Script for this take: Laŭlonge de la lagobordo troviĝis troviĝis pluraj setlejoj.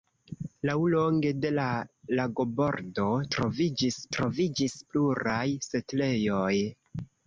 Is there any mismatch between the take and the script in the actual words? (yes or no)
no